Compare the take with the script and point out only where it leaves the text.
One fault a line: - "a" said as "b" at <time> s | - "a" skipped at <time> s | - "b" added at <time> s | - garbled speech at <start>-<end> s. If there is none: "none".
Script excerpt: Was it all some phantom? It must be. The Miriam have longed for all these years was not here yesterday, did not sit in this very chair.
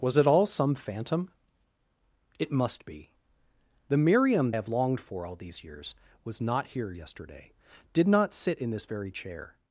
none